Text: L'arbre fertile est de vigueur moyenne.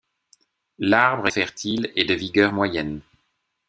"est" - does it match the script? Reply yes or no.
yes